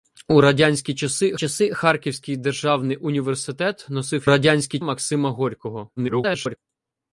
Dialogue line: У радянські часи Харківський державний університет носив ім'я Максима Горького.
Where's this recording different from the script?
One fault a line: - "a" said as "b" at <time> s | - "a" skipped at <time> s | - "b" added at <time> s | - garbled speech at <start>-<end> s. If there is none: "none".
- "часи" added at 1.4 s
- "ім'я" said as "радянські" at 4.3 s
- garbled speech at 6.0-6.6 s